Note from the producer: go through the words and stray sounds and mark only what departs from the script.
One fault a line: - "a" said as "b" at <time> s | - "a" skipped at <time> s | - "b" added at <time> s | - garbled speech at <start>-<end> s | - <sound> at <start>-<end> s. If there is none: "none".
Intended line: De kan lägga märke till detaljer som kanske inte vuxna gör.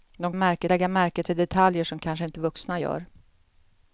- "kan" said as "märke" at 0.3 s